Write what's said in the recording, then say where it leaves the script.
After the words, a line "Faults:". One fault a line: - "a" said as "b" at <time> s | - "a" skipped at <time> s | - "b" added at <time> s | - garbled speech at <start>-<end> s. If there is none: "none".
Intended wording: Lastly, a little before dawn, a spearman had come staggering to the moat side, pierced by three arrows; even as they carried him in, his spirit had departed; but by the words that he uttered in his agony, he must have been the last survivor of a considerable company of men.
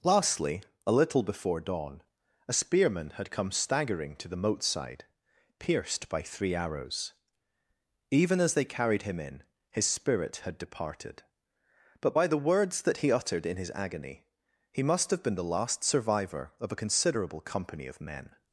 Lastly, a little before dawn, a spearman had come staggering to the moat side, pierced by three arrows; even as they carried him in, his spirit had departed; but by the words that he uttered in his agony, he must have been the last survivor of a considerable company of men.
Faults:
none